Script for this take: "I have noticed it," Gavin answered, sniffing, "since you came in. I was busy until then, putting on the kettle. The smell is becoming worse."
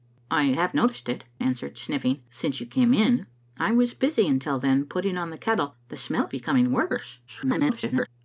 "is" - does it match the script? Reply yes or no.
no